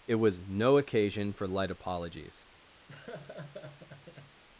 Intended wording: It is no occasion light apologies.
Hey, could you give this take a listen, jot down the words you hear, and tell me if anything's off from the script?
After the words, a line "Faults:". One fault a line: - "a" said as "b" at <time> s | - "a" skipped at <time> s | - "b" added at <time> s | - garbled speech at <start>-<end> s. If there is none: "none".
It was no occasion for light apologies.
Faults:
- "is" said as "was" at 0.1 s
- "for" added at 1.3 s